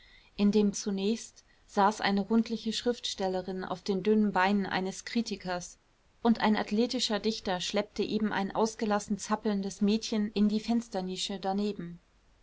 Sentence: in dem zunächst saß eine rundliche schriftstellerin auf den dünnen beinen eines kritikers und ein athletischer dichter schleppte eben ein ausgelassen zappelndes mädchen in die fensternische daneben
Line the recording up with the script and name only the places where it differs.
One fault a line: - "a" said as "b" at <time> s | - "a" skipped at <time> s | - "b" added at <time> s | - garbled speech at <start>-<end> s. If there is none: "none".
none